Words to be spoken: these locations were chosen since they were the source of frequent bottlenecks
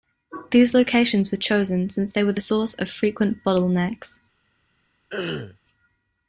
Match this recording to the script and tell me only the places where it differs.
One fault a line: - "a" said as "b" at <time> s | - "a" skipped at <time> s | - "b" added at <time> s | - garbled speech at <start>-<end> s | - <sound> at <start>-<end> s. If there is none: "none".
- throat clearing at 5.1-5.6 s